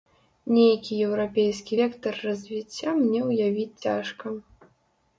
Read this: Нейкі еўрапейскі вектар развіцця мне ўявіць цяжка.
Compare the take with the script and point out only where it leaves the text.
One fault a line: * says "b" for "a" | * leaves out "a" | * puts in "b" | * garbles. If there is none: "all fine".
all fine